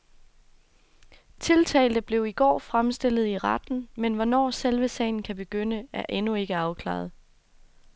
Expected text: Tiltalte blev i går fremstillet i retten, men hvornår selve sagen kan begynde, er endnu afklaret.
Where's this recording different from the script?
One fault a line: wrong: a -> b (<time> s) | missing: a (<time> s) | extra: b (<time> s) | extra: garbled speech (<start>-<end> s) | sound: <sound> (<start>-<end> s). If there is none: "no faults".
extra: ikke (6.3 s)